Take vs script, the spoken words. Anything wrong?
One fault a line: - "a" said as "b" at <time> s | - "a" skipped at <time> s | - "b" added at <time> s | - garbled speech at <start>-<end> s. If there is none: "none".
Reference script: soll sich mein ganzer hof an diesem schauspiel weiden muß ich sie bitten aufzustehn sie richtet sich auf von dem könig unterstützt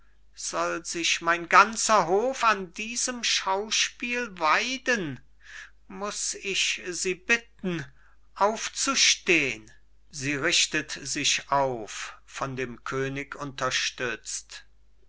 none